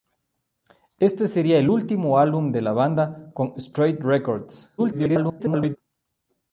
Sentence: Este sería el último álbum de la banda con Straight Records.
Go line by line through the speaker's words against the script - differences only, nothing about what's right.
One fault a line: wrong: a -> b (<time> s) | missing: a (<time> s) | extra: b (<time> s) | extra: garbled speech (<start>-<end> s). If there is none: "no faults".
extra: garbled speech (4.8-5.8 s)